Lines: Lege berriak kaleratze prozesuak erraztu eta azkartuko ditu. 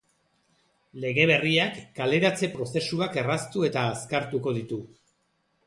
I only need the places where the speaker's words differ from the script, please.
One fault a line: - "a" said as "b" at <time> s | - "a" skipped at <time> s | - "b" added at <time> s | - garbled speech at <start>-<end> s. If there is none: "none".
none